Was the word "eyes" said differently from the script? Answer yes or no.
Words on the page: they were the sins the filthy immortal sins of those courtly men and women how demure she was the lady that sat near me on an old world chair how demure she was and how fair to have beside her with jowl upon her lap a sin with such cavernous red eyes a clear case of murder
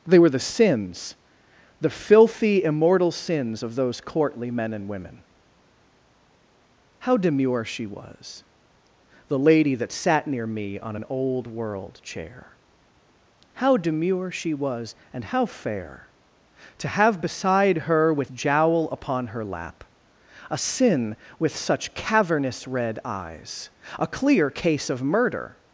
no